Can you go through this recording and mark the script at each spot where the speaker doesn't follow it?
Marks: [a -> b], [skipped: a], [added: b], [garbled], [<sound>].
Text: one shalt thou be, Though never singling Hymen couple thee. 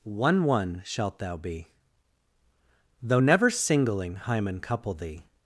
one [added: one] shalt thou be, Though never singling Hymen couple thee.